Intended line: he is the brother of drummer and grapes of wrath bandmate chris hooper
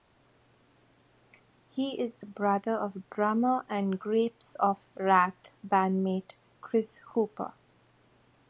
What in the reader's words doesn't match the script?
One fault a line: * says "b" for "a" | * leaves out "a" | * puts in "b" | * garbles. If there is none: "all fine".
all fine